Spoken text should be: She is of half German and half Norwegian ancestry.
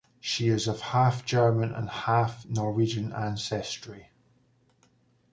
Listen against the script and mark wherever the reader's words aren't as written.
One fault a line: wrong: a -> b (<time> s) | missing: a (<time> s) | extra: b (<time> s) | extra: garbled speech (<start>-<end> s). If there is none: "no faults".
no faults